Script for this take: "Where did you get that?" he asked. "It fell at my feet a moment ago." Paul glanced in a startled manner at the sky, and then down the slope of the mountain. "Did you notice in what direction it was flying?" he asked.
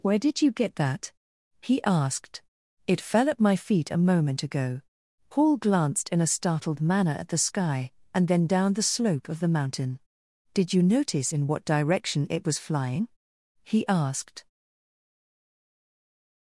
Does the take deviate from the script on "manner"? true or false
false